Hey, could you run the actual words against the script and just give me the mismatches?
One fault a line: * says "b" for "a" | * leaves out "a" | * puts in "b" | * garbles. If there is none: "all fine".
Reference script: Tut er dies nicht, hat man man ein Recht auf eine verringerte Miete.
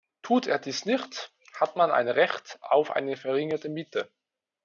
* leaves out "man"